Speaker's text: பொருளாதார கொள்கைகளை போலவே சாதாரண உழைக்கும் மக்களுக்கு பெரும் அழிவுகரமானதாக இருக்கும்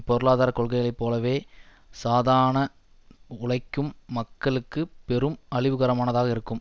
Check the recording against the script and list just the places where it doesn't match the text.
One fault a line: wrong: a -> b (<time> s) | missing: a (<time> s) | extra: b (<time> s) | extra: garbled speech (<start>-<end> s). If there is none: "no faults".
no faults